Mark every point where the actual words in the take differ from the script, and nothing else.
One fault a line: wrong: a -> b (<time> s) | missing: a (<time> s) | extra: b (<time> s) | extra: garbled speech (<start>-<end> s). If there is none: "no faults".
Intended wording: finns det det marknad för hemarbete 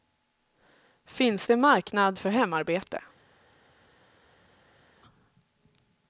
missing: det (1.6 s)